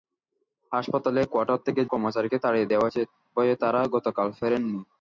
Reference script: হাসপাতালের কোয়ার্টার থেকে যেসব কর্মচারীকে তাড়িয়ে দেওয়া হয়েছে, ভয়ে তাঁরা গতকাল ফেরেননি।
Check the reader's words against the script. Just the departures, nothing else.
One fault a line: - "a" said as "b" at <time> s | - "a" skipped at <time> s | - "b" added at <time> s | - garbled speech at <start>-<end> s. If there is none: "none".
- "যেসব" skipped at 1.8 s